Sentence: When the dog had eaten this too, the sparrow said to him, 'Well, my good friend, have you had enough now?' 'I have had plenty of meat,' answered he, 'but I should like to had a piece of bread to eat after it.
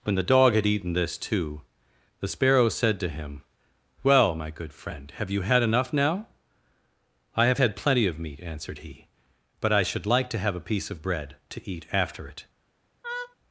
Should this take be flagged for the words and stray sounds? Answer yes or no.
yes